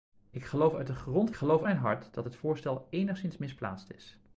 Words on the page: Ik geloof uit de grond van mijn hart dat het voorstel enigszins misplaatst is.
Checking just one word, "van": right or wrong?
wrong